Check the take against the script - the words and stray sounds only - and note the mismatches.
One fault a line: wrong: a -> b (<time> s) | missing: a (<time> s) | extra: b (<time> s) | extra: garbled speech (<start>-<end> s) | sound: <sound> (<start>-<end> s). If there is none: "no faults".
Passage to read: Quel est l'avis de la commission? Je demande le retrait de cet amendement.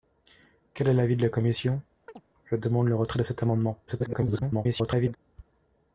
sound: chirp (2.1-2.2 s)
extra: garbled speech (3.9-5.2 s)